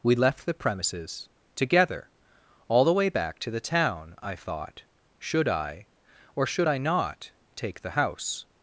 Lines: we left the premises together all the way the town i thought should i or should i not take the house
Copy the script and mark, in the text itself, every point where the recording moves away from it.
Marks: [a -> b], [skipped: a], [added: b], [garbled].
we left the premises together all the way [added: back to] the town i thought should i or should i not take the house